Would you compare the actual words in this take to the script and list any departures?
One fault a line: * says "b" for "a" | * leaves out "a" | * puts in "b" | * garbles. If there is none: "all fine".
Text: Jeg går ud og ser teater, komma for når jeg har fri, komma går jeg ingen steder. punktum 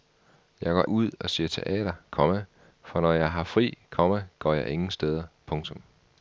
all fine